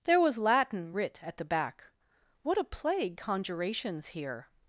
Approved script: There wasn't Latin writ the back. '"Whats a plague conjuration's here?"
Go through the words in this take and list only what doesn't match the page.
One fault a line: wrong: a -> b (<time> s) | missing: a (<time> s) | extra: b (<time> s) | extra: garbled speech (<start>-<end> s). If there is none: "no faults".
wrong: wasn't -> was (0.2 s)
extra: at (1.2 s)
wrong: Whats -> What (2.4 s)